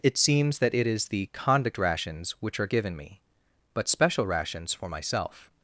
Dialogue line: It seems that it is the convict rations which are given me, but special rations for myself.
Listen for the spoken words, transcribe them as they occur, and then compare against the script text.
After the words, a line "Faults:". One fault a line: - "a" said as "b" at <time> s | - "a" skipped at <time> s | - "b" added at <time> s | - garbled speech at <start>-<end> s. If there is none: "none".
It seems that it is the convict rations which are given me, but special rations for myself.
Faults:
none